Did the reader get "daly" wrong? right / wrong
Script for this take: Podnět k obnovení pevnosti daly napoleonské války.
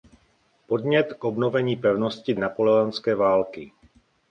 wrong